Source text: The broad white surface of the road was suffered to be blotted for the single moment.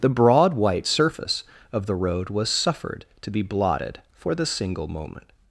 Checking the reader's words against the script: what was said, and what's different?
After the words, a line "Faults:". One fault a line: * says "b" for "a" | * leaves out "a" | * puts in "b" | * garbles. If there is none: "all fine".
The broad white surface of the road was suffered to be blotted for the single moment.
Faults:
all fine